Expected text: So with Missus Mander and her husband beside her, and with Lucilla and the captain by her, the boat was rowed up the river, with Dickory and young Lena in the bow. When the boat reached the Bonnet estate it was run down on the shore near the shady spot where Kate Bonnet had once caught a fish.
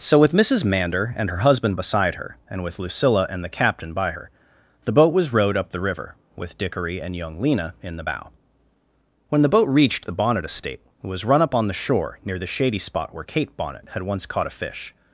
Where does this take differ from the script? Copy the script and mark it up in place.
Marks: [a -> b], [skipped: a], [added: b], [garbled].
So with Missus Mander and her husband beside her, and with Lucilla and the captain by her, the boat was rowed up the river, with Dickory and young Lena in the bow. When the boat reached the Bonnet estate it was run [down -> up] on the shore near the shady spot where Kate Bonnet had once caught a fish.